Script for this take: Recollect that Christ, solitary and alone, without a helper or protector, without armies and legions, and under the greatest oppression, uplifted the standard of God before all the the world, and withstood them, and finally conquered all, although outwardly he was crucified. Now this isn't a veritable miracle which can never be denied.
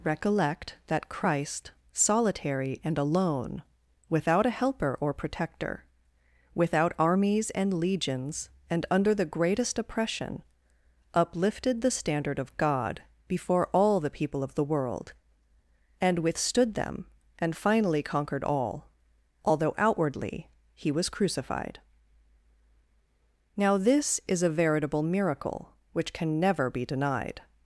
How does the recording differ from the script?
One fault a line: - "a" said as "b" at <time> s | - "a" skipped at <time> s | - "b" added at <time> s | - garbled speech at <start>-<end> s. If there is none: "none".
- "people of" added at 14.1 s
- "isn't" said as "is" at 24.3 s